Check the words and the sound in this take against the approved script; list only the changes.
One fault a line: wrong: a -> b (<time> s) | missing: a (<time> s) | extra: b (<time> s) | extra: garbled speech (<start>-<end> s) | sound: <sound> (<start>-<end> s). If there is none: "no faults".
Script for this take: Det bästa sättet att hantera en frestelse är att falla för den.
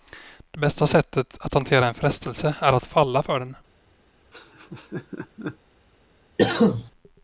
sound: laugh (4.3-5.6 s)
sound: cough (6.4-6.9 s)